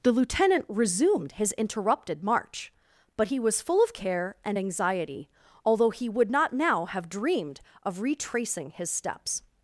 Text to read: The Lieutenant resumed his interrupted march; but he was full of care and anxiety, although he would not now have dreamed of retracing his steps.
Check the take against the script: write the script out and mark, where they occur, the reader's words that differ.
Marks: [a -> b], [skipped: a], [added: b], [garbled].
The Lieutenant resumed his interrupted march; but he was full of care and anxiety, although he would not now have dreamed of retracing his steps.